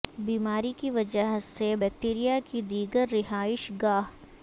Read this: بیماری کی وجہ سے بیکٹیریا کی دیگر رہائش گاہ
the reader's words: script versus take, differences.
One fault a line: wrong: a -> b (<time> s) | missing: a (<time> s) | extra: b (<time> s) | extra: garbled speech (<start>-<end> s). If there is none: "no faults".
no faults